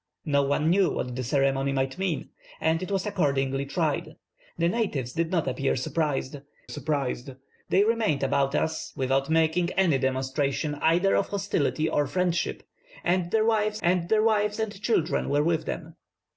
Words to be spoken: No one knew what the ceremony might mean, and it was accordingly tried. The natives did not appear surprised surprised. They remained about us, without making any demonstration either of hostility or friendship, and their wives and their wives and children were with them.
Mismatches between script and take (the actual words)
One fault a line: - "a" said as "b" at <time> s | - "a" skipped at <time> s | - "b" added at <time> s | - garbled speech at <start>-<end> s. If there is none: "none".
none